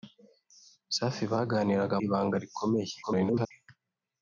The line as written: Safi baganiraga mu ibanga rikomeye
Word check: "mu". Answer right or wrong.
wrong